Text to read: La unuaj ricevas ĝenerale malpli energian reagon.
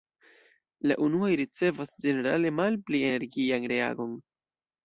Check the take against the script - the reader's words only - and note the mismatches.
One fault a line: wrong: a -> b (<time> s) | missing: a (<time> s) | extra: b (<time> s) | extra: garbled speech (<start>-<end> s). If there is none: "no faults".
no faults